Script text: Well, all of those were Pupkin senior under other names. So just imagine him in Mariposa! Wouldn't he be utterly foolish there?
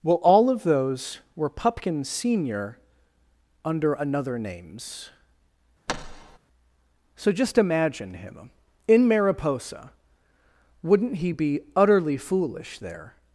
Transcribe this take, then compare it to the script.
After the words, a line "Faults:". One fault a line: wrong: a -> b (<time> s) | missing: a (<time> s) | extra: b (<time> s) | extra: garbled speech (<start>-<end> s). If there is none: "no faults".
Well, all of those were Pupkin senior under another names. So just imagine him in Mariposa! Wouldn't he be utterly foolish there?
Faults:
wrong: other -> another (3.9 s)